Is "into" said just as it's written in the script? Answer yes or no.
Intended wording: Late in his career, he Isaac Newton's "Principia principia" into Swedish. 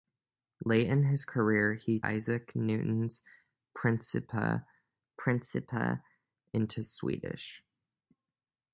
yes